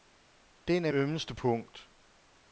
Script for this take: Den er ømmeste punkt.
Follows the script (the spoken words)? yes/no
yes